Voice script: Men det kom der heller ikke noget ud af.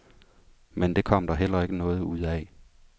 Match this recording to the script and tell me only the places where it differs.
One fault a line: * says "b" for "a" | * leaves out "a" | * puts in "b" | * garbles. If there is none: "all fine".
all fine